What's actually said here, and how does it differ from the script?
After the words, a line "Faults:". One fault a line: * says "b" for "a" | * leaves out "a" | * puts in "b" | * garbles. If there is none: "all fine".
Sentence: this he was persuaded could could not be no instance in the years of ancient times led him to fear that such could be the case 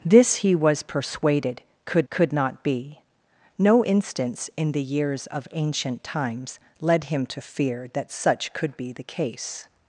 this he was persuaded could could not be no instance in the years of ancient times led him to fear that such could be the case
Faults:
all fine